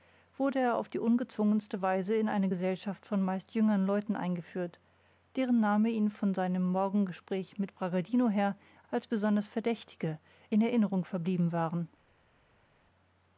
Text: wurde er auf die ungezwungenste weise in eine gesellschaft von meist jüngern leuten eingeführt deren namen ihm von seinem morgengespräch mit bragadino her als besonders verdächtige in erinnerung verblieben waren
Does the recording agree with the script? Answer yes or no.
yes